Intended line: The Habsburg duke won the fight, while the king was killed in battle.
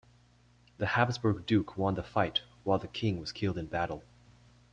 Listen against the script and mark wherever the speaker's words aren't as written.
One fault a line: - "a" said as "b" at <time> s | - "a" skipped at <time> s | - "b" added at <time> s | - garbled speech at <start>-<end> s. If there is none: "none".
none